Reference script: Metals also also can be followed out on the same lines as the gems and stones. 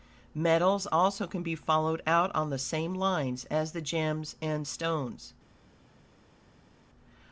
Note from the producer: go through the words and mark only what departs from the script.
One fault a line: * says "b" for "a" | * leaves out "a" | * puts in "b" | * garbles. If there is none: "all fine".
* leaves out "also"